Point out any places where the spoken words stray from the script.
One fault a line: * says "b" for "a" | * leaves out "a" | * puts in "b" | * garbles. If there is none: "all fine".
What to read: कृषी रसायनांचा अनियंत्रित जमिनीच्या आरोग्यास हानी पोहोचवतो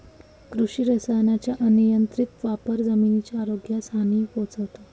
* puts in "वापर"